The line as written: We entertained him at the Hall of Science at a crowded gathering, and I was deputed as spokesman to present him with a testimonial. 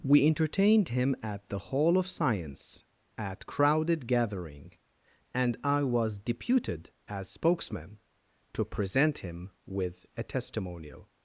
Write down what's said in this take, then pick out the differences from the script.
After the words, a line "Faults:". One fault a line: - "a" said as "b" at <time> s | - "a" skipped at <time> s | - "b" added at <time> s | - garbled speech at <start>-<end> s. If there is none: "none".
We entertained him at the Hall of Science at crowded gathering, and I was deputed as spokesman to present him with a testimonial.
Faults:
- "a" skipped at 3.5 s